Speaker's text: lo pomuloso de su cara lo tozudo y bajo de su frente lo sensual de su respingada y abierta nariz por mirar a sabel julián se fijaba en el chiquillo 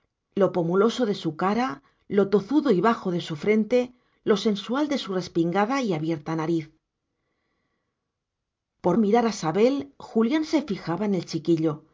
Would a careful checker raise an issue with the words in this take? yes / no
no